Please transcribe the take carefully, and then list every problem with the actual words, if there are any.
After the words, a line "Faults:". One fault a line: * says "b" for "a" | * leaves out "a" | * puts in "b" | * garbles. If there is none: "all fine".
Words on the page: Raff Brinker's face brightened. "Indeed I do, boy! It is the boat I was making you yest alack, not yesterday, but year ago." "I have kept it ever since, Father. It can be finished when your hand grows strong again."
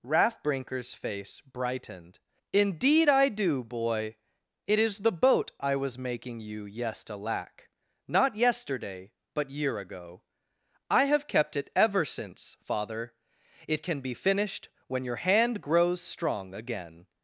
Raff Brinker's face brightened. "Indeed I do, boy! It is the boat I was making you yest alack, not yesterday, but year ago." "I have kept it ever since, Father. It can be finished when your hand grows strong again."
Faults:
all fine